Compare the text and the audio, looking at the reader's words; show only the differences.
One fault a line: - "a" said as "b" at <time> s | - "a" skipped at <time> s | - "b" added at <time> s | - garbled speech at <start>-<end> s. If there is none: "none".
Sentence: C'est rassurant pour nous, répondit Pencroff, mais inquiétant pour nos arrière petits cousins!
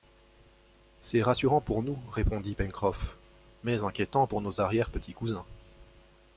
none